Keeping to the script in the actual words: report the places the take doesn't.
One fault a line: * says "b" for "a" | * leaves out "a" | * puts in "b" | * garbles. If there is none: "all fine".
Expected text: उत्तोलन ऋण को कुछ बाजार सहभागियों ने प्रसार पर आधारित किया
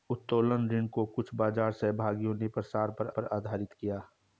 * puts in "पर"